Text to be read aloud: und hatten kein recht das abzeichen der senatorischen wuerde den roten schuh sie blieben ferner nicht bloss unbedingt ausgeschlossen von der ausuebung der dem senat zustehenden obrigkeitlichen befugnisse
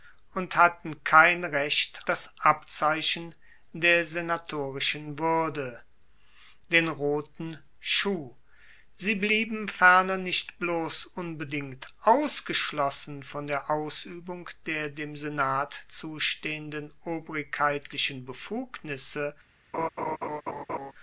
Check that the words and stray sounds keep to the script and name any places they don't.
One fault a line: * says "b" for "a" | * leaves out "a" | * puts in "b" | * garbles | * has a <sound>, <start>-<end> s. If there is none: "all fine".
* has a laugh, 19.7-20.9 s